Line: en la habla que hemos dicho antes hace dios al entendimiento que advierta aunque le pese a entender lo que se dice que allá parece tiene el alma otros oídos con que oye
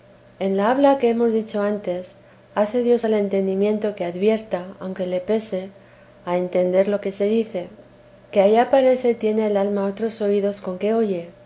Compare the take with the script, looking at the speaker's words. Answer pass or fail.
pass